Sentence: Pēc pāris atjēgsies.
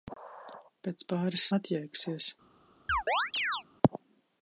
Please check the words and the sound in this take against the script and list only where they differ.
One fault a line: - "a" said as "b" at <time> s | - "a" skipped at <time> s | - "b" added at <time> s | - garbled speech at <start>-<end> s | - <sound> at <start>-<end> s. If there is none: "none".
- chirp at 2.9-3.6 s